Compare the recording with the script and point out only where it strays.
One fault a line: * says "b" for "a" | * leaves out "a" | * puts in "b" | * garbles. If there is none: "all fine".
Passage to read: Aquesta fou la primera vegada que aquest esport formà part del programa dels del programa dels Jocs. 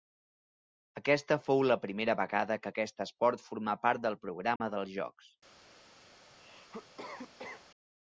* leaves out "del programa dels"